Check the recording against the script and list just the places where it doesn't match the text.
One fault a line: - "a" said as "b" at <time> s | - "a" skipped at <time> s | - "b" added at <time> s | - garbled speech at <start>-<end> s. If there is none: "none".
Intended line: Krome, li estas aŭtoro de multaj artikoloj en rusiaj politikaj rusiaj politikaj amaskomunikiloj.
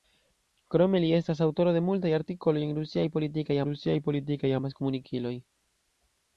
none